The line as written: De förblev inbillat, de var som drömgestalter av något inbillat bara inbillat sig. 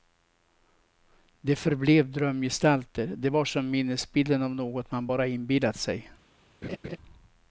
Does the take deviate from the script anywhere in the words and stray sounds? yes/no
yes